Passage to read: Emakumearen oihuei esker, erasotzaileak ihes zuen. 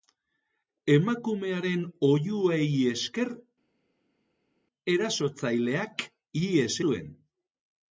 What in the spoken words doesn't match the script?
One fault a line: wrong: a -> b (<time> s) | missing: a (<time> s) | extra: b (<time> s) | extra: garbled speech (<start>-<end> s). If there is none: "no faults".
no faults